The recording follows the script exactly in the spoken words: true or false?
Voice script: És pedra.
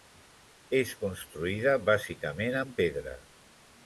false